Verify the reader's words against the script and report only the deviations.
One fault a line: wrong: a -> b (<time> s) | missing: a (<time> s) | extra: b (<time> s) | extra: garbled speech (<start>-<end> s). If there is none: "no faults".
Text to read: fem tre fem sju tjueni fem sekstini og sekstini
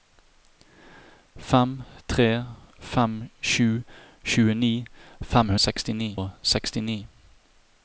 no faults